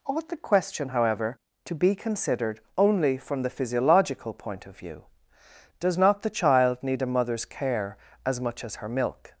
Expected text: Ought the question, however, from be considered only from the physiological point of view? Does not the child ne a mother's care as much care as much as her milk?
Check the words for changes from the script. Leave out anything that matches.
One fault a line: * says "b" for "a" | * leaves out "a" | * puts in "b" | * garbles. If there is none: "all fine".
* says "to" for "from"
* says "need" for "ne"
* leaves out "care as much"